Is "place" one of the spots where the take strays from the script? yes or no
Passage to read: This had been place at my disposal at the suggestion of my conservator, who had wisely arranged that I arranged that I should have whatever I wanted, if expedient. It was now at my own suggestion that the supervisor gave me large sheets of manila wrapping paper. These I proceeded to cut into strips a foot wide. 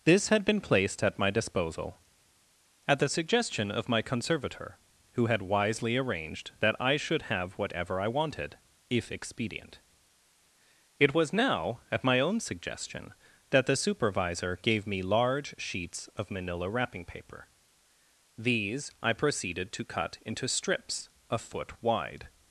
yes